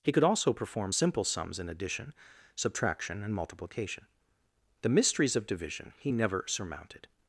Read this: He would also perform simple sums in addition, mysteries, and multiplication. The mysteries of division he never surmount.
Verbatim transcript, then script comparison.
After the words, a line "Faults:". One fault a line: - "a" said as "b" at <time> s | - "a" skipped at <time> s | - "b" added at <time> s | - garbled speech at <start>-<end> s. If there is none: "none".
He could also perform simple sums in addition, subtraction, and multiplication. The mysteries of division he never surmounted.
Faults:
- "would" said as "could" at 0.1 s
- "mysteries" said as "subtraction" at 2.6 s
- "surmount" said as "surmounted" at 6.5 s